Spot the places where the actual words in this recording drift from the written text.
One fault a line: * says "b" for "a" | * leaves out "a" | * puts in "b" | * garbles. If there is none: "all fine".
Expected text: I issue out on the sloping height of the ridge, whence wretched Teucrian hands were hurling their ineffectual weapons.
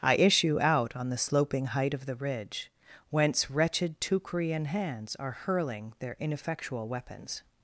* says "are" for "were"